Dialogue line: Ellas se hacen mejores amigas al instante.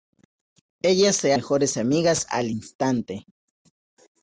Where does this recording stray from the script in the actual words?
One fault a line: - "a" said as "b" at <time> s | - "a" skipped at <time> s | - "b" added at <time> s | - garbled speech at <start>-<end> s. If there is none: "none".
- "hacen" skipped at 1.4 s